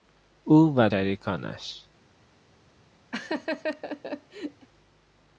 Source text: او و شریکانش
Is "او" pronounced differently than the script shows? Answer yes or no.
no